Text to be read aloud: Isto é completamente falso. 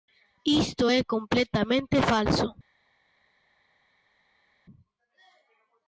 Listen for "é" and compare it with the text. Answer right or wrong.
right